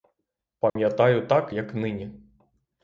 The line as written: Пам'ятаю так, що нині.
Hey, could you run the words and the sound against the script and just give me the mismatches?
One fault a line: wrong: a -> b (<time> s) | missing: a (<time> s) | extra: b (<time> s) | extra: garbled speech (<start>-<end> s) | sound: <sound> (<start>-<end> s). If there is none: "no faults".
sound: dropout (0.7-0.8 s)
wrong: що -> як (1.5 s)